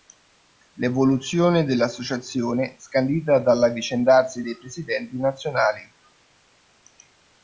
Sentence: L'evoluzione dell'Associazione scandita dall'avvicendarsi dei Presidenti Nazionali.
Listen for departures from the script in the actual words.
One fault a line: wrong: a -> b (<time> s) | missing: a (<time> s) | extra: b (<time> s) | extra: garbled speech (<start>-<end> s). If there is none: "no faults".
no faults